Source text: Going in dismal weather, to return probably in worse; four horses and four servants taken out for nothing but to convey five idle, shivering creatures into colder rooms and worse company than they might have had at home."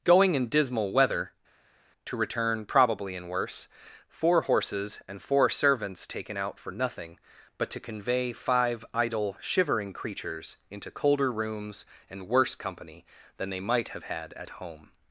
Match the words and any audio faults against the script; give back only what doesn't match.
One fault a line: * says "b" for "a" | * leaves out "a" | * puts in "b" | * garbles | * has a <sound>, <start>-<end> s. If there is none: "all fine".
all fine